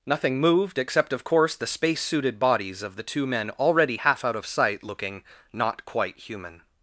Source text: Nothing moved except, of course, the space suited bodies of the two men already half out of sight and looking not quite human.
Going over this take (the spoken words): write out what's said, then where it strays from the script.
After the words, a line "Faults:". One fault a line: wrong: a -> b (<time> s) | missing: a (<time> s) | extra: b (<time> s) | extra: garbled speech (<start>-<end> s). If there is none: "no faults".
Nothing moved except, of course, the space suited bodies of the two men already half out of sight looking not quite human.
Faults:
missing: and (4.8 s)